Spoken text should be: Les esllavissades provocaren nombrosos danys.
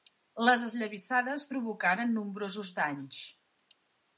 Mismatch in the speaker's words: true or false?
false